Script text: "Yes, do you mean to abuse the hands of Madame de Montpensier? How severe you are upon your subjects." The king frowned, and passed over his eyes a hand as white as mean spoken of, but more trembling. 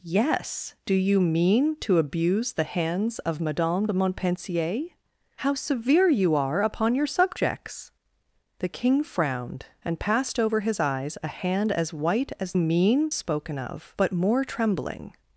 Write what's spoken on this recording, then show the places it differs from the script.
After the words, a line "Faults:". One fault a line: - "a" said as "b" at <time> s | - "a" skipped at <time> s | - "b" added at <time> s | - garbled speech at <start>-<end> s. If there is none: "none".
"Yes, do you mean to abuse the hands of Madame de Montpensier? How severe you are upon your subjects." The king frowned, and passed over his eyes a hand as white as mean spoken of, but more trembling.
Faults:
none